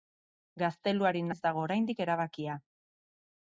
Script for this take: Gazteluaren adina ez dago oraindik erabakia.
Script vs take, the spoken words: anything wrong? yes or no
yes